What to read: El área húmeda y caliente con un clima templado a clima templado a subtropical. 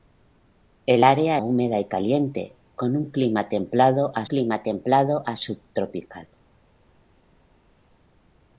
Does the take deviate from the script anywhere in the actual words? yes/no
no